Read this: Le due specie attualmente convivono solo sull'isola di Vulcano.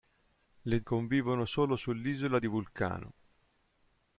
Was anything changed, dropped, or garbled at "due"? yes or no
yes